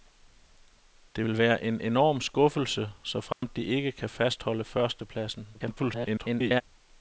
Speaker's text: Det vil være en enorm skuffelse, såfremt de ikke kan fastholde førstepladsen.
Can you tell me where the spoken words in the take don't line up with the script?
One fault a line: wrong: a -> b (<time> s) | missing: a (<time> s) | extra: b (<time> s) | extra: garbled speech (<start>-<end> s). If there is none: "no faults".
extra: garbled speech (5.5-6.6 s)